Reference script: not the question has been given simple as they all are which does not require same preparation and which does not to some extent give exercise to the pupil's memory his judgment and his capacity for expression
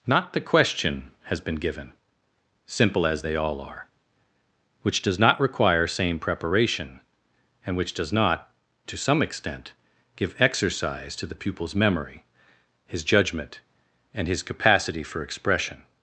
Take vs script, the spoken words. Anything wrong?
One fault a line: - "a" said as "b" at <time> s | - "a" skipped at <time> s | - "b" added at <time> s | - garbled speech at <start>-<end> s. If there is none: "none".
none